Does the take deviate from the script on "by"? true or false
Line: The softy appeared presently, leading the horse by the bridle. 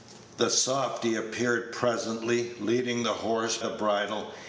true